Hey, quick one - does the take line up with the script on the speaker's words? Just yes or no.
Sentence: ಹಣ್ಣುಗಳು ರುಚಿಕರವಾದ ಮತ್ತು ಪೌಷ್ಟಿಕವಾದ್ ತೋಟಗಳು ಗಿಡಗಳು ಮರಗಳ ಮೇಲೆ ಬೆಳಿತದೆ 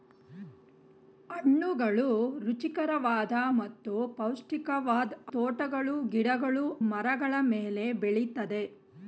yes